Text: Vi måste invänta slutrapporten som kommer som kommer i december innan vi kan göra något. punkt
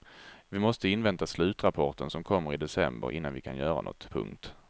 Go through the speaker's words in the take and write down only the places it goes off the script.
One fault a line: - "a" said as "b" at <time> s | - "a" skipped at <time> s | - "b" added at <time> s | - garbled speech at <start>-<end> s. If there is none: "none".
- "som kommer" skipped at 2.5 s